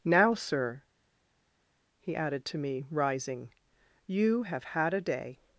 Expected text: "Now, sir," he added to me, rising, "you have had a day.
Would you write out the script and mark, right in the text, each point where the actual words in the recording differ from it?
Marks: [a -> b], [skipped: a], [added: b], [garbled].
"Now, sir," he added to me, rising, "you have had a day.